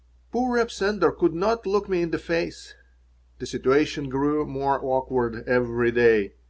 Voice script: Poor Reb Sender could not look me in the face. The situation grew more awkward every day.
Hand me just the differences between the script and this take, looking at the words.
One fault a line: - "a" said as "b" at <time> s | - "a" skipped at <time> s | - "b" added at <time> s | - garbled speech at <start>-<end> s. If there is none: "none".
none